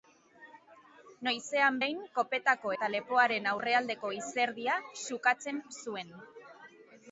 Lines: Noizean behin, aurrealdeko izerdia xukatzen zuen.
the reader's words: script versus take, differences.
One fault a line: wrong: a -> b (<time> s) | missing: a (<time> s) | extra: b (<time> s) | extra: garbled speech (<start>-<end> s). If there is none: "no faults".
extra: kopetako eta lepoaren (2.2 s)